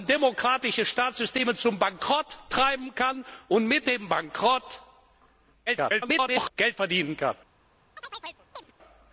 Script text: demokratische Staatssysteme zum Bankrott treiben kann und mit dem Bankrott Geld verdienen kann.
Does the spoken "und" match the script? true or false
true